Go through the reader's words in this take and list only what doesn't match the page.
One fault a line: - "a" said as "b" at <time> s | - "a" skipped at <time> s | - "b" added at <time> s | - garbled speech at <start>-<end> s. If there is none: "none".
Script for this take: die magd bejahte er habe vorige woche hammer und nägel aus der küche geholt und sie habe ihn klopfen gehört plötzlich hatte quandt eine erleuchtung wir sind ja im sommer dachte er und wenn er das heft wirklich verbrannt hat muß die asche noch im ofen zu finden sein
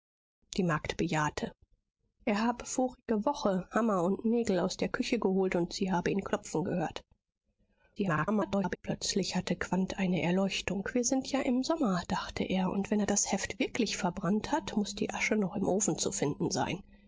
- garbled speech at 8.0-8.8 s